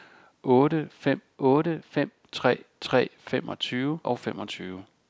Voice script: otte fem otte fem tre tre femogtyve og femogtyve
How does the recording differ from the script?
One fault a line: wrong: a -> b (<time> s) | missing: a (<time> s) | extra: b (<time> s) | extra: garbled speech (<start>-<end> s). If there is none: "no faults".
no faults